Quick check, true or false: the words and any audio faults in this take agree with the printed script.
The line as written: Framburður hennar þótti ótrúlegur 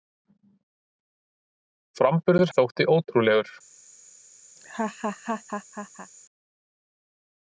false